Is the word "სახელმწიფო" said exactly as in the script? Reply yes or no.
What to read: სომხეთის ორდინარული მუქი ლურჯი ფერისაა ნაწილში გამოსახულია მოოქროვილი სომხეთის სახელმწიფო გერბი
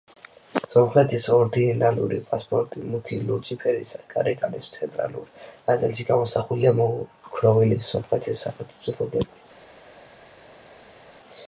yes